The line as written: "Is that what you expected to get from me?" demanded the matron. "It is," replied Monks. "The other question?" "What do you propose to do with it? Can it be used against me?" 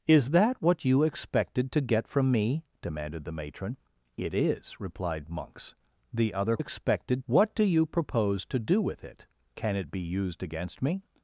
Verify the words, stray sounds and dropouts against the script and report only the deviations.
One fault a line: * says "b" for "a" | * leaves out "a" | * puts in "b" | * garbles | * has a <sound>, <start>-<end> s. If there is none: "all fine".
* says "expected" for "question"